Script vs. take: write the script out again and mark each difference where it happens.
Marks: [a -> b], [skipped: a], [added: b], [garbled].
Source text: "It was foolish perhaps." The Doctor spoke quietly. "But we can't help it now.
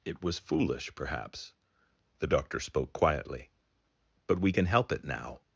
"It was foolish perhaps." The Doctor spoke quietly. "But we [can't -> can] help it now.